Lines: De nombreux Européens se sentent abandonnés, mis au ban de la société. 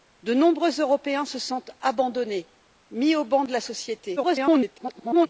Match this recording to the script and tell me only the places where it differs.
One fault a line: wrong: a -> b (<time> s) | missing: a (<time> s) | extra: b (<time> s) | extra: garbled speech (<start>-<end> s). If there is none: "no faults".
extra: garbled speech (4.2-5.3 s)